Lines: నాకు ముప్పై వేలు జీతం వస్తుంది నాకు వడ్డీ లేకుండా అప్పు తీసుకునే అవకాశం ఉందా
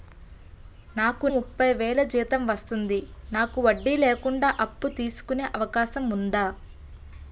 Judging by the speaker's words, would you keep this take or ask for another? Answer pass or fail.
pass